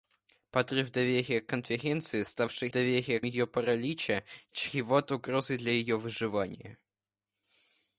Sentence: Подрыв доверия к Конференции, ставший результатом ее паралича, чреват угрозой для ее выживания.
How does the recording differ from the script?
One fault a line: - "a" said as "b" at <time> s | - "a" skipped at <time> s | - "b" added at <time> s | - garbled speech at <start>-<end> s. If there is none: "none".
- "результатом" said as "доверия" at 2.7 s